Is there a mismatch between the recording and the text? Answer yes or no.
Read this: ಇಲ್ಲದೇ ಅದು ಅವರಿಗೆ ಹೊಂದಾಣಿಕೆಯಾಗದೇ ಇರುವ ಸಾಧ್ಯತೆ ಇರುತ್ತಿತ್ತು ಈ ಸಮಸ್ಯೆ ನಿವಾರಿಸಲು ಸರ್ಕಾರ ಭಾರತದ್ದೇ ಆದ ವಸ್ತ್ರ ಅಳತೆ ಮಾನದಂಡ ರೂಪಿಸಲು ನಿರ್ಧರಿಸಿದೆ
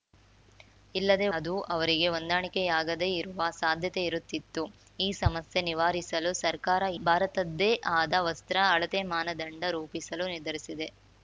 no